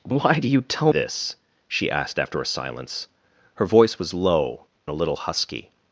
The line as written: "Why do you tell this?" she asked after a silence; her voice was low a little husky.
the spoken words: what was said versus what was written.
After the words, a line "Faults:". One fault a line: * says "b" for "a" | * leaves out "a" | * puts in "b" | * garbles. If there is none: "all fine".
"Why do you tell this?" she asked after a silence; her voice was low a little husky.
Faults:
all fine